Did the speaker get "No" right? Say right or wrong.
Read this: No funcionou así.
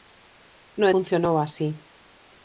right